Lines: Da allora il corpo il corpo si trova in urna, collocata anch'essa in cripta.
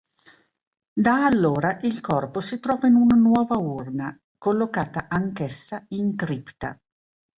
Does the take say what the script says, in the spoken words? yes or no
no